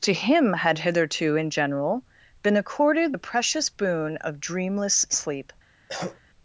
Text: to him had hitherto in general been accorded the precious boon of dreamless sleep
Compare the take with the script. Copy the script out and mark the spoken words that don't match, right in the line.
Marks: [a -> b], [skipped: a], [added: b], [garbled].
to him had hitherto in general been accorded the precious boon of dreamless sleep